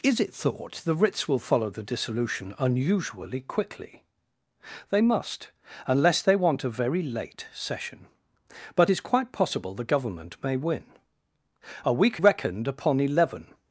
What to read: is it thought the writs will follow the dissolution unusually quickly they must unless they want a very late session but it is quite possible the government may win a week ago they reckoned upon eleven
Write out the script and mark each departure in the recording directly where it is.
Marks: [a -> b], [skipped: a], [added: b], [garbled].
is it thought the writs will follow the dissolution unusually quickly they must unless they want a very late session but [skipped: it] is quite possible the government may win a week [skipped: ago they] reckoned upon eleven